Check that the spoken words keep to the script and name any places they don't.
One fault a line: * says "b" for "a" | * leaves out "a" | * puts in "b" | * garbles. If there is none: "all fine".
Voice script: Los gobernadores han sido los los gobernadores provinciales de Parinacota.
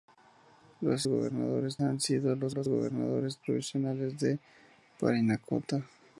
all fine